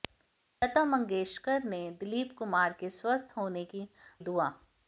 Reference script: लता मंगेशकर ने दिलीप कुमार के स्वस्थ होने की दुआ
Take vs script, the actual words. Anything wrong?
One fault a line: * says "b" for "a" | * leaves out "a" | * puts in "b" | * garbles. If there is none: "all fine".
all fine